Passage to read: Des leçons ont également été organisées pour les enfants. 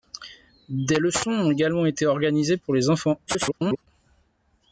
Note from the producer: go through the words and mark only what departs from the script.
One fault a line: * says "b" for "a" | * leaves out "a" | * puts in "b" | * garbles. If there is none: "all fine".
* garbles